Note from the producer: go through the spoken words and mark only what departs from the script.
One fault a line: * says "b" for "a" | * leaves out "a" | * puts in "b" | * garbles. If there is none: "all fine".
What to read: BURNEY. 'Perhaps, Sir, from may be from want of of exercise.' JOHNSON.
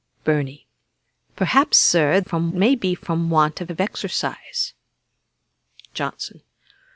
all fine